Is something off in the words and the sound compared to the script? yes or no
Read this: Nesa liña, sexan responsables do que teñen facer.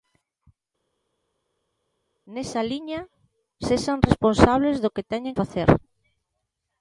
no